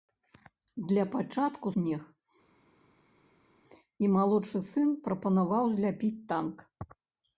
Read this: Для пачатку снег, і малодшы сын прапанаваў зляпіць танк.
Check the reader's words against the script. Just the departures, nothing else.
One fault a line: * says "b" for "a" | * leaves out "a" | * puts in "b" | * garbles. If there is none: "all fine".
all fine